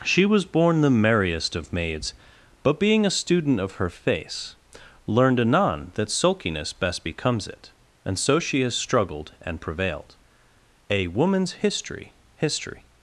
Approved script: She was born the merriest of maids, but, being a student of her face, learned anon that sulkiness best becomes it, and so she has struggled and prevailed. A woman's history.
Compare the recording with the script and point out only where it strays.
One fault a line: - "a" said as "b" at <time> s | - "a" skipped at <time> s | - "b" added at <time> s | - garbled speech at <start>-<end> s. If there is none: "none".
- "history" added at 12.4 s